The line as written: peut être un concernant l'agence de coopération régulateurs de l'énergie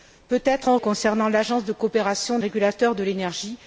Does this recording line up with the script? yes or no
yes